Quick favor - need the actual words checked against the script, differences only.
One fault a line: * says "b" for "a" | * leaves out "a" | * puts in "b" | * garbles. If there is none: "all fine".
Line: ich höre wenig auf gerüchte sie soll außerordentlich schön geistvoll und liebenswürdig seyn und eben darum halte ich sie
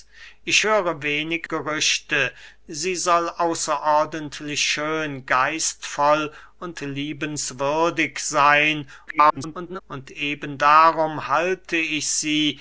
* leaves out "auf"
* garbles